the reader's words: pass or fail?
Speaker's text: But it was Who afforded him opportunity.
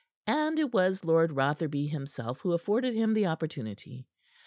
fail